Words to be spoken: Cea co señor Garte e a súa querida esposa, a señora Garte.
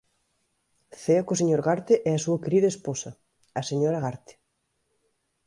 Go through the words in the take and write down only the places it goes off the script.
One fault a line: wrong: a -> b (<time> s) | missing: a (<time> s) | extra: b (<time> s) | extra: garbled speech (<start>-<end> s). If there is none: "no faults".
no faults